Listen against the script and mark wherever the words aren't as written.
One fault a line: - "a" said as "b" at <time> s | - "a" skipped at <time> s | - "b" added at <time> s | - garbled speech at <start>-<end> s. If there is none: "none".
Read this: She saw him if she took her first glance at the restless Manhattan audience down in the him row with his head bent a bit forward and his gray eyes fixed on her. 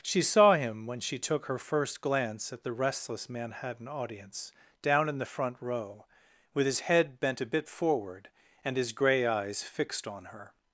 - "if" said as "when" at 0.9 s
- "him" said as "front" at 5.2 s